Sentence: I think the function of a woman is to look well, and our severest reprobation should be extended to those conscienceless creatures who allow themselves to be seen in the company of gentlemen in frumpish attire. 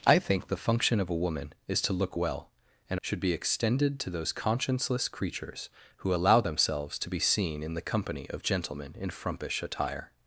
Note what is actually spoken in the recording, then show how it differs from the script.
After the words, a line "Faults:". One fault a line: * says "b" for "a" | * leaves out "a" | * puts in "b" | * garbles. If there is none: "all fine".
I think the function of a woman is to look well, and should be extended to those conscienceless creatures who allow themselves to be seen in the company of gentlemen in frumpish attire.
Faults:
* leaves out "our severest reprobation"